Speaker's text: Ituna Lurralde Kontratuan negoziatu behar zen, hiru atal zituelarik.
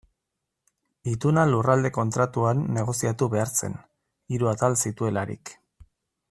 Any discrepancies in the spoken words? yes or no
no